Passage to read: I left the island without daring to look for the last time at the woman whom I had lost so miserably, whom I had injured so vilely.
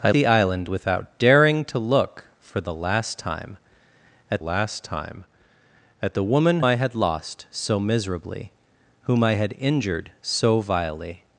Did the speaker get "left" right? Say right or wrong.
wrong